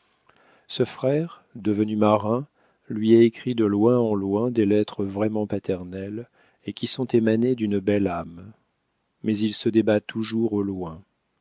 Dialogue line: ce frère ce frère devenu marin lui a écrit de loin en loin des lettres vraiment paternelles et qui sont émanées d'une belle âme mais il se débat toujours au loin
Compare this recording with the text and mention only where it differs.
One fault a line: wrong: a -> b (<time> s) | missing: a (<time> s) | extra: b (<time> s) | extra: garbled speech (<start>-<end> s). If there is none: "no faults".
missing: ce frère (1.4 s)